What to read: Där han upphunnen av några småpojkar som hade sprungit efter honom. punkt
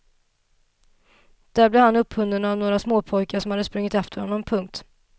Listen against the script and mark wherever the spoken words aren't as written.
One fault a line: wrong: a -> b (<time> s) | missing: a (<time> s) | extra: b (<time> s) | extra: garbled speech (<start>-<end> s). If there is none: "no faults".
extra: blev (1.7 s)